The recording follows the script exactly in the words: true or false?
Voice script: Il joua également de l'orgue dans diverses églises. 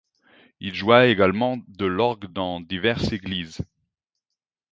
true